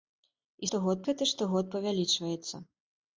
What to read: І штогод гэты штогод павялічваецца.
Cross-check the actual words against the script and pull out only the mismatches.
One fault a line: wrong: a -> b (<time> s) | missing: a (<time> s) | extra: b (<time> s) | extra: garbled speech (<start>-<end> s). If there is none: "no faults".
no faults